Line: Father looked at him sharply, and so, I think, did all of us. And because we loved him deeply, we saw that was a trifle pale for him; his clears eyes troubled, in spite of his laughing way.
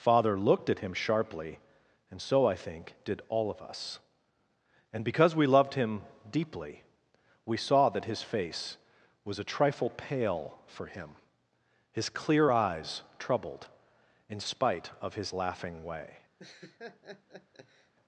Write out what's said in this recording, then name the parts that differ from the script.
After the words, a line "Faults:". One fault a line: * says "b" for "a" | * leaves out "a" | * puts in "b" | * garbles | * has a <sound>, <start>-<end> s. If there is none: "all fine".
Father looked at him sharply, and so, I think, did all of us. And because we loved him deeply, we saw that his face was a trifle pale for him; his clear eyes troubled, in spite of his laughing way.
Faults:
* puts in "his face"
* says "clear" for "clears"
* has a laugh, 16.4-17.9 s